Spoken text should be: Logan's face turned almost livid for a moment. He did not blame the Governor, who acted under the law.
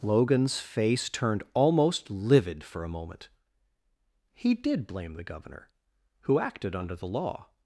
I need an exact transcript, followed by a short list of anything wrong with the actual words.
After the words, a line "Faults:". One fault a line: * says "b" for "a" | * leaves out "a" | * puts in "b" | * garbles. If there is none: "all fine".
Logan's face turned almost livid for a moment. He did blame the Governor, who acted under the law.
Faults:
* leaves out "not"